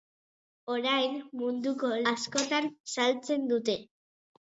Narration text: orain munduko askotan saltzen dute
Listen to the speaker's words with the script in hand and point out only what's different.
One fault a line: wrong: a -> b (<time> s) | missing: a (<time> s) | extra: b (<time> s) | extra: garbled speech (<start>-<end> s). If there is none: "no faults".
no faults